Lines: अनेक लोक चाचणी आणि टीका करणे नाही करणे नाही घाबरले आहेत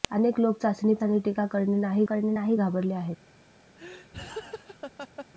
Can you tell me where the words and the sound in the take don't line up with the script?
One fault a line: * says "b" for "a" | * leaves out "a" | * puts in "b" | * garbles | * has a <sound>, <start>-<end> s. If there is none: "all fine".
* has a laugh, 3.8-5.3 s